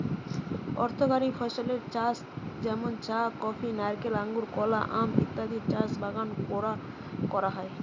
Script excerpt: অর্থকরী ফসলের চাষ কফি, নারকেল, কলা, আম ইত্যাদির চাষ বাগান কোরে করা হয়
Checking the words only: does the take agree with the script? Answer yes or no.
no